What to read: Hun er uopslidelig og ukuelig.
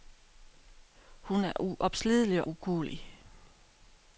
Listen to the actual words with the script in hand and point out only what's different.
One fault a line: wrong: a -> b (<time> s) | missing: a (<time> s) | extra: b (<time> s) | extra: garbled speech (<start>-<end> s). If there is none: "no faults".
missing: og (2.5 s)